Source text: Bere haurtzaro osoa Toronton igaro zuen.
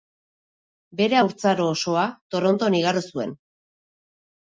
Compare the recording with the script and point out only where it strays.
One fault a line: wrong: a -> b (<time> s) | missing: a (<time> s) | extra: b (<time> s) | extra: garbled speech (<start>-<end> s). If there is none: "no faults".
no faults